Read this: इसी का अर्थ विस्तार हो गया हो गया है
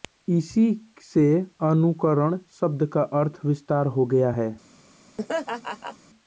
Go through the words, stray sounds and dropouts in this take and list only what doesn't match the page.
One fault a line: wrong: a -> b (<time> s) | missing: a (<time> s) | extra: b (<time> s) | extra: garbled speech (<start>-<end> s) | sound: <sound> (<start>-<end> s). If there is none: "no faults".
extra: से अनुकरण शब्द (1.0 s)
missing: हो गया (4.3 s)
sound: laugh (5.2-6.0 s)